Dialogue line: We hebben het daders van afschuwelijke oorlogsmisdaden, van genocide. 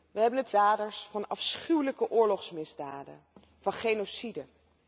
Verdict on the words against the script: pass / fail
pass